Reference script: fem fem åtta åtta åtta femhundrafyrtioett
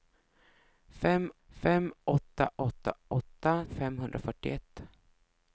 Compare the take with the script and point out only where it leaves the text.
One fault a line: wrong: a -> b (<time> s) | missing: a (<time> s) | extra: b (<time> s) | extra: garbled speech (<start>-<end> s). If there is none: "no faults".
no faults